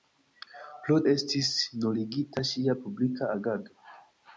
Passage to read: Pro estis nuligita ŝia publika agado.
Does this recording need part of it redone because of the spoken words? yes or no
no